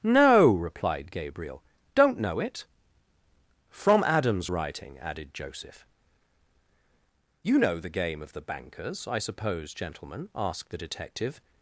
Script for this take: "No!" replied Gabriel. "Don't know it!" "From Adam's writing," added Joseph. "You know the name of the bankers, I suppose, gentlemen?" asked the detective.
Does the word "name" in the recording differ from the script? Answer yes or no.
yes